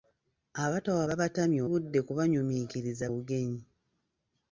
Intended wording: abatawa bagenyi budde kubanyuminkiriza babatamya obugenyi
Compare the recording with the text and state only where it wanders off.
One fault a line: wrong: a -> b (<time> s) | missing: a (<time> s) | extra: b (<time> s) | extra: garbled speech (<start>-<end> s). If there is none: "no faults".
wrong: bagenyi -> babatamya (1.1 s)
missing: babatamya (3.0 s)